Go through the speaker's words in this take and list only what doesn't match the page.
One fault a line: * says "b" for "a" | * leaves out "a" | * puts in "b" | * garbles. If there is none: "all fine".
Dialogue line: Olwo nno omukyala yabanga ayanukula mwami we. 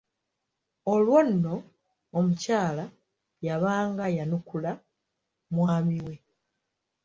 all fine